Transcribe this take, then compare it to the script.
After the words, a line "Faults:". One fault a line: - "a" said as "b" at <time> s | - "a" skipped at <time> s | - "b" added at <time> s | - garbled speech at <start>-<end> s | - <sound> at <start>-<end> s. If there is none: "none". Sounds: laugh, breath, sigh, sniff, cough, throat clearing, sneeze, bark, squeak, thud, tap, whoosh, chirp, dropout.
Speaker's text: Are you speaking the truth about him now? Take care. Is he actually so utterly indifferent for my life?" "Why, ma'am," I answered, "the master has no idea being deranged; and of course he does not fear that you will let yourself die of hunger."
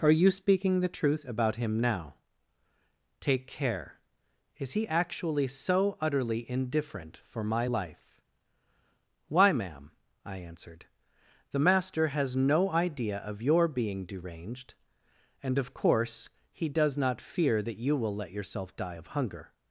Are you speaking the truth about him now? Take care. Is he actually so utterly indifferent for my life?" "Why, ma'am," I answered, "the master has no idea of your being deranged; and of course he does not fear that you will let yourself die of hunger."
Faults:
- "of your" added at 13.2 s